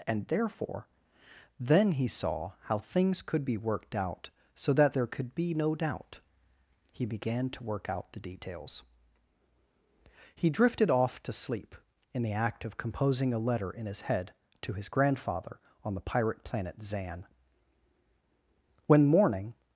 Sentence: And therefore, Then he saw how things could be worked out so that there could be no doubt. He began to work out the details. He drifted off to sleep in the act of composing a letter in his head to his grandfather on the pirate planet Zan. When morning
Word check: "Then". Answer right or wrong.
right